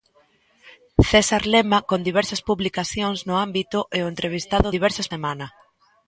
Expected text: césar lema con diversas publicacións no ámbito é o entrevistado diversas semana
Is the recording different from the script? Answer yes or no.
no